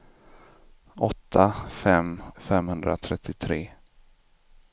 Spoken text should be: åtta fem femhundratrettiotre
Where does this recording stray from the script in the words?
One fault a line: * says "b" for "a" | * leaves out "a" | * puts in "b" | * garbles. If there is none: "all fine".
all fine